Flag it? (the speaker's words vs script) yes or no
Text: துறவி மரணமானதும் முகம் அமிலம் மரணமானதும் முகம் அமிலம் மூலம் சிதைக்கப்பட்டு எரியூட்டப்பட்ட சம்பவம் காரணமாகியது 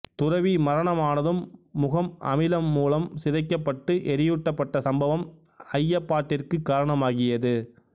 yes